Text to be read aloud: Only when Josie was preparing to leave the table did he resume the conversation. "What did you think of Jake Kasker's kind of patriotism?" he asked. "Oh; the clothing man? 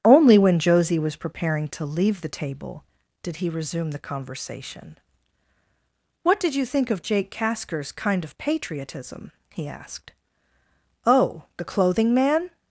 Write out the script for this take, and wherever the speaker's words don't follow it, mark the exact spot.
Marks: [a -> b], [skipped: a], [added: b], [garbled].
Only when Josie was preparing to leave the table did he resume the conversation. "What did you think of Jake Kasker's kind of patriotism?" he asked. "Oh; the clothing man?